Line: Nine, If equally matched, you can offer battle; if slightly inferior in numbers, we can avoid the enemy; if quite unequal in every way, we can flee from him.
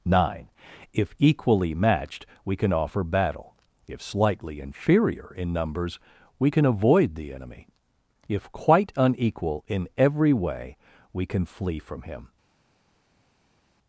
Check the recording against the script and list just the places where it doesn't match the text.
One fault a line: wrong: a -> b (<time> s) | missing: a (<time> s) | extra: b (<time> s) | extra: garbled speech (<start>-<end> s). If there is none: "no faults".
wrong: you -> we (2.4 s)